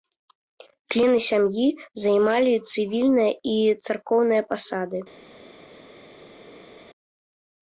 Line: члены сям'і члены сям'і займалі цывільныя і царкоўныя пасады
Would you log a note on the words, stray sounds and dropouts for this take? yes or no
yes